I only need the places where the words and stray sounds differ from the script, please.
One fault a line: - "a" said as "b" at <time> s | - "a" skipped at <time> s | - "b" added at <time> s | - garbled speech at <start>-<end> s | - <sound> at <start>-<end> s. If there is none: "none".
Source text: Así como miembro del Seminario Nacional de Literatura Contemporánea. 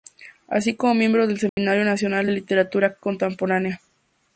- dropout at 1.5-1.6 s